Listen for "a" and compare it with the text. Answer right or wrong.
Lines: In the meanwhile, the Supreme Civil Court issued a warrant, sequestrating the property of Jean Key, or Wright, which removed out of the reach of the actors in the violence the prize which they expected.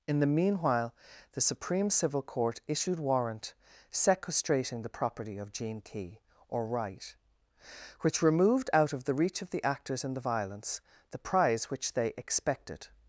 wrong